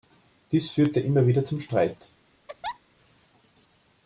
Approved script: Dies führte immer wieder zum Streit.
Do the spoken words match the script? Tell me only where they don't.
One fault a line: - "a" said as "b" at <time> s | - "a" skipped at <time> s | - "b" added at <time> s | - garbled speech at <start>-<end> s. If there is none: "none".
none